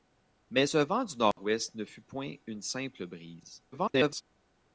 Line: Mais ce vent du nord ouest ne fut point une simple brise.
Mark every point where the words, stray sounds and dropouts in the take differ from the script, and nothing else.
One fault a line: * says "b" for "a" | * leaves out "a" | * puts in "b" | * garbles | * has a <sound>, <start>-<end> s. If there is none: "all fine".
* has a dropout, 1.3-1.4 s
* garbles